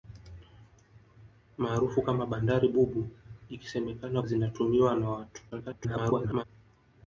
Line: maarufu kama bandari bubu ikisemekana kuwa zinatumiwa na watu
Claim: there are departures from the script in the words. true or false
true